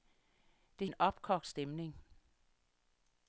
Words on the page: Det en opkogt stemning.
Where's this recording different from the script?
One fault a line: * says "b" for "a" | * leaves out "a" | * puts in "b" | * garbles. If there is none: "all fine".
all fine